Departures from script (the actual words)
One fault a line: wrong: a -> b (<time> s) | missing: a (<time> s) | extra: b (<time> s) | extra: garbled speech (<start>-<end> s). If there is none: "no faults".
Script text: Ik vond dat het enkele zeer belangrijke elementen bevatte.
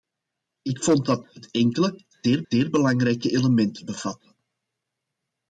extra: zeer (2.5 s)